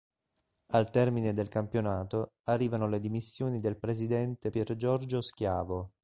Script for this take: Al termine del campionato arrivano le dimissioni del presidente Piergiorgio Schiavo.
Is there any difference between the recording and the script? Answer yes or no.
no